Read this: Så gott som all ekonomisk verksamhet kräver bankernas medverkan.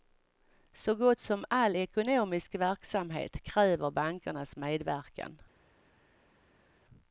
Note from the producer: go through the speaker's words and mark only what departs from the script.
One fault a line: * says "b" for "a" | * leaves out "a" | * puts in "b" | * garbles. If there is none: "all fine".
all fine